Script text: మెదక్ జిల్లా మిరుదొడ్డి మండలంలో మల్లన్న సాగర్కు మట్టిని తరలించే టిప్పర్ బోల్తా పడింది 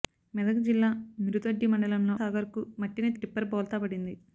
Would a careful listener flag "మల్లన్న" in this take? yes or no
yes